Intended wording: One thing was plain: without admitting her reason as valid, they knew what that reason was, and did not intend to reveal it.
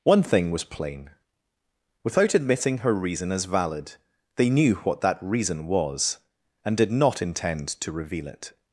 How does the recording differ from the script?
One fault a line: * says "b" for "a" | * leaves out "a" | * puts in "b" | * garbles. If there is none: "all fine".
all fine